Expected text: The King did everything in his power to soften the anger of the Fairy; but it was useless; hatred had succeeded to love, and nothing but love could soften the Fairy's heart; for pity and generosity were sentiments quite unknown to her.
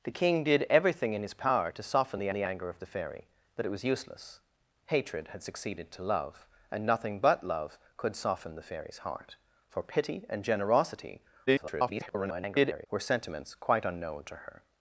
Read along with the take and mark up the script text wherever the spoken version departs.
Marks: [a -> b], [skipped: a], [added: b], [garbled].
The King did everything in his power to soften the [added: the] anger of the Fairy; but it was useless; hatred had succeeded to love, and nothing but love could soften the Fairy's heart; for pity and generosity [garbled] were sentiments quite unknown to her.